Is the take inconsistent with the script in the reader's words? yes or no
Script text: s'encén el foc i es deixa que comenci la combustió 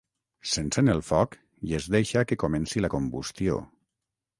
no